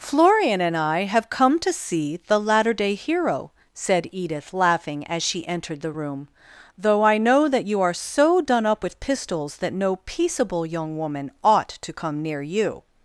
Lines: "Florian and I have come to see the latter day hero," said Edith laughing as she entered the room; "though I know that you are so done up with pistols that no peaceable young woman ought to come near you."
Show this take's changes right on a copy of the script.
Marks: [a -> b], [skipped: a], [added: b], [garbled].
"Florian and I have come to see the latter day hero," said Edith laughing as she entered the room; "though I know that you are so done up with pistols that no peaceable young woman ought to come near you."